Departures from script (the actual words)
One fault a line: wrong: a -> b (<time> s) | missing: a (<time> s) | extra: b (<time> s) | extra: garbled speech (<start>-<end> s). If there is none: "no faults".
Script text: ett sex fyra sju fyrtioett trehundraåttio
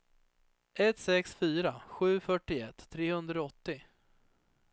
no faults